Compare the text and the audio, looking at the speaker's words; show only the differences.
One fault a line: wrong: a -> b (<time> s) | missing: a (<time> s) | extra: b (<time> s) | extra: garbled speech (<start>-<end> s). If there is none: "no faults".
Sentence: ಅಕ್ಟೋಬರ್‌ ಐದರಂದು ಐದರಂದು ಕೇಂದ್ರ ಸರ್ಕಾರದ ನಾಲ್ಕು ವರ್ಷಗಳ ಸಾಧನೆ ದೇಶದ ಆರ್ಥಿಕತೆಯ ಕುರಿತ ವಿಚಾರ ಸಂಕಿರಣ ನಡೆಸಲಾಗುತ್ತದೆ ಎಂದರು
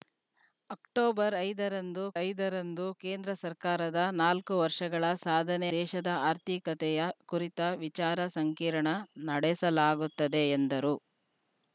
no faults